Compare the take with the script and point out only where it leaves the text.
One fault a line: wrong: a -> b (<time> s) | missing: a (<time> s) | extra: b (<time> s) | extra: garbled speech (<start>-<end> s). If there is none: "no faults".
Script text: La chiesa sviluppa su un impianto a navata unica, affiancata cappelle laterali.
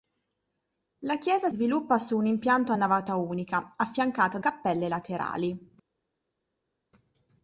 no faults